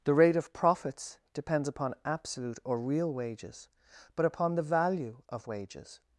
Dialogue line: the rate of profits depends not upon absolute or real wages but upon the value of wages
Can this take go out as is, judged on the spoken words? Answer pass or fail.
fail